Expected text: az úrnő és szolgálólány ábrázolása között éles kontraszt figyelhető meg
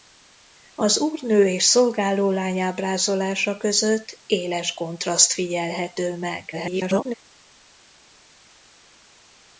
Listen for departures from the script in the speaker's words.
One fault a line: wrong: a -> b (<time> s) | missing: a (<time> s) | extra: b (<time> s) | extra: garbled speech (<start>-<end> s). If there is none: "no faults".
extra: garbled speech (6.5-7.1 s)